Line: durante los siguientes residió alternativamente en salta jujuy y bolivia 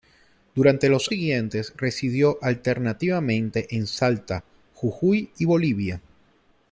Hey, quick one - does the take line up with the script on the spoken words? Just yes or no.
yes